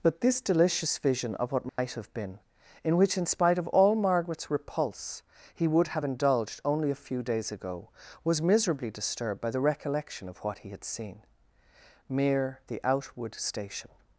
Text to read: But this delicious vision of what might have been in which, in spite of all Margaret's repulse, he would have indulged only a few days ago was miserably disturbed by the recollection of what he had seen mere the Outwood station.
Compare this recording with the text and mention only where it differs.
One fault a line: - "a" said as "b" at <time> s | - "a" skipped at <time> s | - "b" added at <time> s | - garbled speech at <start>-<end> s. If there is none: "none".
none